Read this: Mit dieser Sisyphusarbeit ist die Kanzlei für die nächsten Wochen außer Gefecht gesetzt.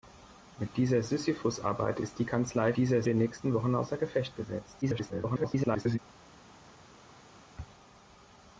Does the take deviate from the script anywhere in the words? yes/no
yes